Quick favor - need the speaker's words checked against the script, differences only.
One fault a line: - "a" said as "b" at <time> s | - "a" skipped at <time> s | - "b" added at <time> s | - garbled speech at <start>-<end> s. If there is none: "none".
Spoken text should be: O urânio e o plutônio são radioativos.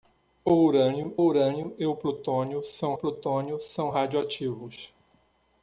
- "urânio" added at 1.1 s
- "plutônio são" added at 2.9 s